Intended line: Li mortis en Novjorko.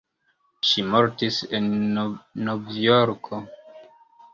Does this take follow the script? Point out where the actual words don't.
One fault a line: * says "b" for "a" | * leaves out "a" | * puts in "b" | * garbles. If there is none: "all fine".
* says "Ŝi" for "Li"